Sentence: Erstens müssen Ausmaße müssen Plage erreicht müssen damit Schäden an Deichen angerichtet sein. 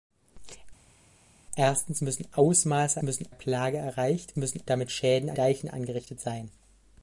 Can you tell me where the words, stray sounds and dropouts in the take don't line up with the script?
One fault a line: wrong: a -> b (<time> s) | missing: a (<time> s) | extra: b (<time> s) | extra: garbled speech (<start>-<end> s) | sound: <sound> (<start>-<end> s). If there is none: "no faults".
no faults